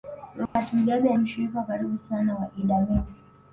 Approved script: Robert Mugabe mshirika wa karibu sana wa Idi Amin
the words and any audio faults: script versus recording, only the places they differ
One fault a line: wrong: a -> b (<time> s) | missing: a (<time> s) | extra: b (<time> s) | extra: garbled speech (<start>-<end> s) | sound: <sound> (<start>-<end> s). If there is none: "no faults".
sound: dropout (0.5-0.6 s)